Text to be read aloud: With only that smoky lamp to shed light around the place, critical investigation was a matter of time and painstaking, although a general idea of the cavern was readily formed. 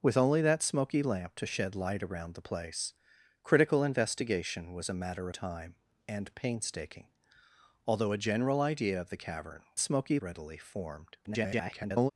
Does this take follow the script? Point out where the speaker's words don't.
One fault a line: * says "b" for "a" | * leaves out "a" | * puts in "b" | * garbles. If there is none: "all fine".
* leaves out "of"
* says "smoky" for "was"
* garbles